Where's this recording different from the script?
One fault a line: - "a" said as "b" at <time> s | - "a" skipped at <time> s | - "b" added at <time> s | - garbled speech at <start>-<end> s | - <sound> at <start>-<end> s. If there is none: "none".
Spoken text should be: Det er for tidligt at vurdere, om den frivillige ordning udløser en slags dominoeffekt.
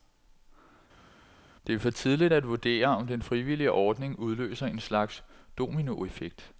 none